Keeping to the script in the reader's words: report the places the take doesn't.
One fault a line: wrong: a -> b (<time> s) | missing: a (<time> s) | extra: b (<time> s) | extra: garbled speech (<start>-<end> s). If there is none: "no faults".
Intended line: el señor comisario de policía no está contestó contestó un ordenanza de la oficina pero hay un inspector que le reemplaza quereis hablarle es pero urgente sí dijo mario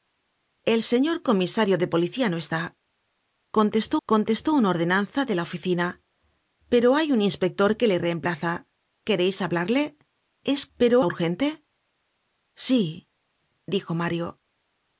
no faults